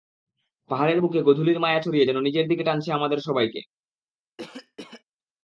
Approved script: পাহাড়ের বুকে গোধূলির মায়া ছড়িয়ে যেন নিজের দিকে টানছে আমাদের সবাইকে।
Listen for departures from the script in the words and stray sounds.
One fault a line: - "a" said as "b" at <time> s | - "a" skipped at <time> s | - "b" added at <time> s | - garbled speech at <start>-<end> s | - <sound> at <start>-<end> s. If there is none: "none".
- cough at 4.4-5.0 s